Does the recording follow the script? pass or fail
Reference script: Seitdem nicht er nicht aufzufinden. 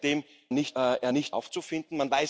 pass